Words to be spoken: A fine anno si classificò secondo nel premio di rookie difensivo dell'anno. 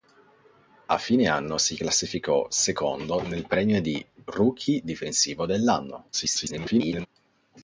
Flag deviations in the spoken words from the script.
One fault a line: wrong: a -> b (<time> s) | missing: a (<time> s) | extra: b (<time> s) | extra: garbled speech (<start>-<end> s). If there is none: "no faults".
extra: garbled speech (6.1-7.1 s)